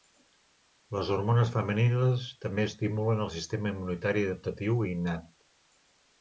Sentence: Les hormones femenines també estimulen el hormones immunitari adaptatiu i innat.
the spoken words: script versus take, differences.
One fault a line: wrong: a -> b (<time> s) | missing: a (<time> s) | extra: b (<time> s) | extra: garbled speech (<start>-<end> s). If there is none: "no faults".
wrong: hormones -> sistema (3.4 s)